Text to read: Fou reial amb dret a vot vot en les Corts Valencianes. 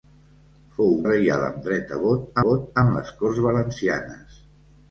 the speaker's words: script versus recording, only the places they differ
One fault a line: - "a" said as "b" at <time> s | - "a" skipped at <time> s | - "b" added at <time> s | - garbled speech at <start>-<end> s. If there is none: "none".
none